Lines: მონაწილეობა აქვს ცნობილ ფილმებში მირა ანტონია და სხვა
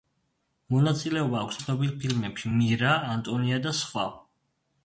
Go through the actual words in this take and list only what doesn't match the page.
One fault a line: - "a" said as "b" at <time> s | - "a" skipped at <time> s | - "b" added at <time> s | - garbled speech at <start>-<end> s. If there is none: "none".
none